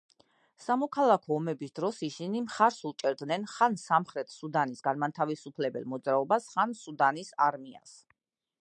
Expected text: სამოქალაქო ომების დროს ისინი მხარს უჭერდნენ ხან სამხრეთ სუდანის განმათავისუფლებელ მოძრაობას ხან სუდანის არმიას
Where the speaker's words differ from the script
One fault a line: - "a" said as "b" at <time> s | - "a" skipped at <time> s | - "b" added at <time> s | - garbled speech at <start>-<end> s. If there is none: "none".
none